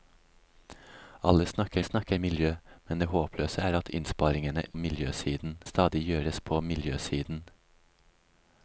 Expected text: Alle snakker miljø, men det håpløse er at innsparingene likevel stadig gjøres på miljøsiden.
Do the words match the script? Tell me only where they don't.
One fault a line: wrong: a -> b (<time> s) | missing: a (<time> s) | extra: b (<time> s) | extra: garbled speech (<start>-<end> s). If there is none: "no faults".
extra: snakker (1.8 s)
wrong: likevel -> miljøsiden (4.7 s)